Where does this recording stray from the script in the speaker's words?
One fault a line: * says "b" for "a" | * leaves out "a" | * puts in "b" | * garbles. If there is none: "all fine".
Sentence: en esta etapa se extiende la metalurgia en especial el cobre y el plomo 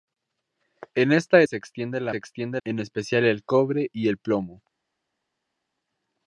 * leaves out "etapa"
* says "extiende" for "metalurgia"